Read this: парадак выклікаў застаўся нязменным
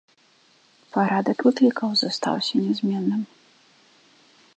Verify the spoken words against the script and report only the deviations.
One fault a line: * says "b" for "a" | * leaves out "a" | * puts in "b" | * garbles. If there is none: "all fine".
all fine